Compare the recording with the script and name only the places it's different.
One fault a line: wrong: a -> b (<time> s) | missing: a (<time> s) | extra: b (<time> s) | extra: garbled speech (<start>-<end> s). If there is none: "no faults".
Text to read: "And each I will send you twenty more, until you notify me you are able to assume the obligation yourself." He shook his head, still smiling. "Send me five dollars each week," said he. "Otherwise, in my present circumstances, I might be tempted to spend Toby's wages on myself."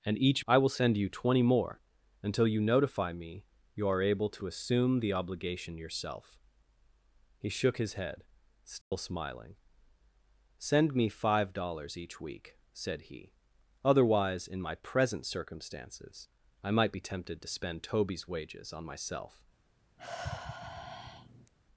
no faults